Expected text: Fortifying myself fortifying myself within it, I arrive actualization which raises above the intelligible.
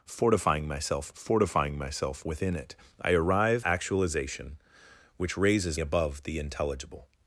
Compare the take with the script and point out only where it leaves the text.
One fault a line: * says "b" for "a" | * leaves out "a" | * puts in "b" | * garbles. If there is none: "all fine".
all fine